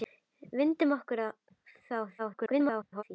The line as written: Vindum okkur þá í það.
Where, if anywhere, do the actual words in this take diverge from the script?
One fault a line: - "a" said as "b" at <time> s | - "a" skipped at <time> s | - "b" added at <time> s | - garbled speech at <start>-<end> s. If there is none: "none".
- garbled speech at 2.2-3.0 s